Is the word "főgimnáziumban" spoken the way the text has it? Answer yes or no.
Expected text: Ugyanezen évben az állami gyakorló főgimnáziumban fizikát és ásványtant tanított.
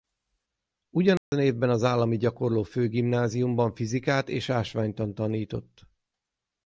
yes